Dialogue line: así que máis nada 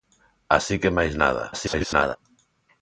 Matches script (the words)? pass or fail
fail